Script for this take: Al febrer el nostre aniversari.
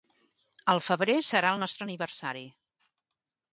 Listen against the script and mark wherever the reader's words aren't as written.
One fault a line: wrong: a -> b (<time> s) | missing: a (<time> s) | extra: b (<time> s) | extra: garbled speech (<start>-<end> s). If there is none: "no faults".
extra: serà (1.3 s)